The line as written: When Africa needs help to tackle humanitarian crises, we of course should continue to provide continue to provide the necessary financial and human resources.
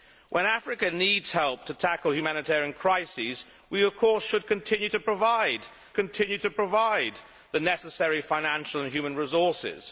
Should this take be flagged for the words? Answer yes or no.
no